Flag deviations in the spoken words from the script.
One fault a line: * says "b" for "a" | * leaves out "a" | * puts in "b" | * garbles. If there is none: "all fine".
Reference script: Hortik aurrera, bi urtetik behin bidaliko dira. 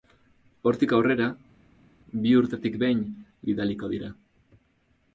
all fine